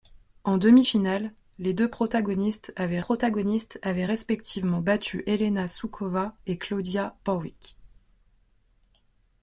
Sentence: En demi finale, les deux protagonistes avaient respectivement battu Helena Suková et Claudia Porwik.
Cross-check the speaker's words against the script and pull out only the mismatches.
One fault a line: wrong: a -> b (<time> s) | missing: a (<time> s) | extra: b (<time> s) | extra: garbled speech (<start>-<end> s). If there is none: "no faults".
extra: protagonistes avaient (3.0 s)